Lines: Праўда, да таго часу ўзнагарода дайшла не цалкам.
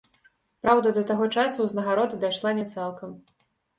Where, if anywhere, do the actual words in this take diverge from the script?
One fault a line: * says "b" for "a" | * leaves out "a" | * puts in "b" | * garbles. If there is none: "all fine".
all fine